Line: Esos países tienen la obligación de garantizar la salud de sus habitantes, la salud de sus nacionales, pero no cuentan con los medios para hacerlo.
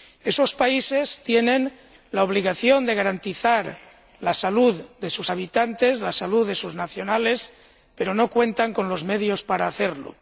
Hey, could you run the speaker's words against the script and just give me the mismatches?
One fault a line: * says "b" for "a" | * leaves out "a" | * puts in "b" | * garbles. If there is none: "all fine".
all fine